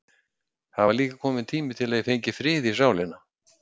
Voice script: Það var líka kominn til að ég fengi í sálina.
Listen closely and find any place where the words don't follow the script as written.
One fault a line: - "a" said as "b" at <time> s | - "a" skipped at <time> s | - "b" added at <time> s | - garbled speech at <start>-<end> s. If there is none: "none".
- "tími" added at 1.5 s
- "frið" added at 2.4 s